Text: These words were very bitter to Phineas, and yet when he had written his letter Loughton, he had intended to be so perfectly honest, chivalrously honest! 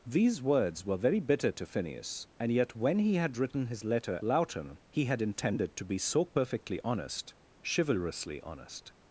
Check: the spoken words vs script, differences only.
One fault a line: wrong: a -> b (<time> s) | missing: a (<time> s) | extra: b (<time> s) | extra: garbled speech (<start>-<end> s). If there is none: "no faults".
no faults